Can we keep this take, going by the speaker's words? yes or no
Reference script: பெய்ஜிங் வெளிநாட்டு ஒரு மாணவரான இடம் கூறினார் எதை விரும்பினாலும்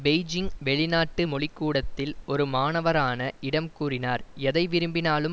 no